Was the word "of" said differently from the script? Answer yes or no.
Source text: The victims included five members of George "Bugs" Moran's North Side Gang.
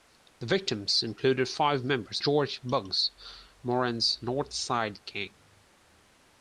yes